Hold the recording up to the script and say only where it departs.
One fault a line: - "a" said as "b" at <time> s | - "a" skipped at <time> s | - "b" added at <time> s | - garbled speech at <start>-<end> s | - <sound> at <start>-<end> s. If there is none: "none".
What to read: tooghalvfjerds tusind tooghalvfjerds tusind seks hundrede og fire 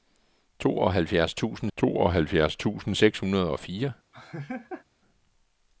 - laugh at 4.1-4.8 s